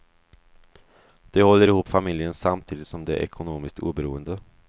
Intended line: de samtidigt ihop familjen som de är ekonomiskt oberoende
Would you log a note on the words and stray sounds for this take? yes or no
yes